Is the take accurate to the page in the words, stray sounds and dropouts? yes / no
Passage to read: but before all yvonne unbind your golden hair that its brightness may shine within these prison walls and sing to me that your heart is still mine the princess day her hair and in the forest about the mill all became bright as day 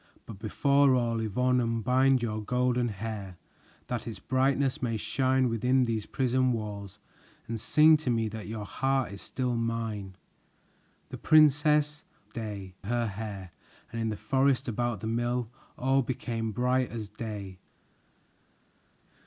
yes